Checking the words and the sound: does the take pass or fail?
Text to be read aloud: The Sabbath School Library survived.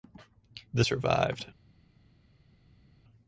fail